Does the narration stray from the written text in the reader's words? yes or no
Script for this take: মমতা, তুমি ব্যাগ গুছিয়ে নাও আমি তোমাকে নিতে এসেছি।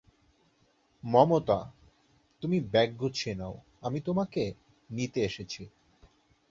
no